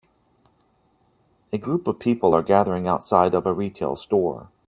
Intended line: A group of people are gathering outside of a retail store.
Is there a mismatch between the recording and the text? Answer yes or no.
no